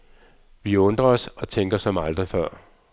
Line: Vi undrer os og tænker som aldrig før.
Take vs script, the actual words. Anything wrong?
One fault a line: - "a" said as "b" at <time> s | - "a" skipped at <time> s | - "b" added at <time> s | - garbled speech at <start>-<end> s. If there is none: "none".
none